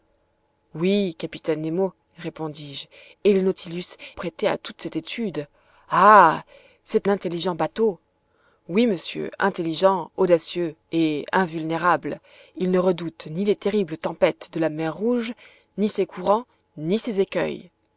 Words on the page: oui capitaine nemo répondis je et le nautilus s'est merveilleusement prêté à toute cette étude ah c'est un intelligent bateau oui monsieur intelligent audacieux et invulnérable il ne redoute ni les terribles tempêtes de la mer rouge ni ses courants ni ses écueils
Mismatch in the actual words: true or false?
true